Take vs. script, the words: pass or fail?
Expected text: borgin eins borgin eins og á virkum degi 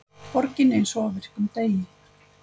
fail